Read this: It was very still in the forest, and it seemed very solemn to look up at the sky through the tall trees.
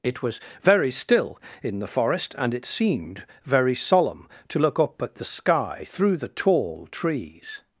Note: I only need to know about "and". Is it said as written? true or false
true